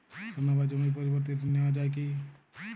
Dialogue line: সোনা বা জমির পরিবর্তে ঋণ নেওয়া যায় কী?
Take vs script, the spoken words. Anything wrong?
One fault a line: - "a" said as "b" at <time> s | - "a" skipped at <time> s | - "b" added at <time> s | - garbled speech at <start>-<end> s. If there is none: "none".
none